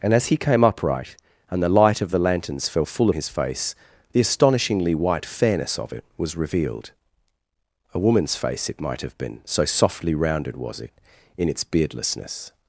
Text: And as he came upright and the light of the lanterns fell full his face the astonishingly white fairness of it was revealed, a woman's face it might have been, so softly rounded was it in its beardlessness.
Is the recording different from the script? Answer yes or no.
no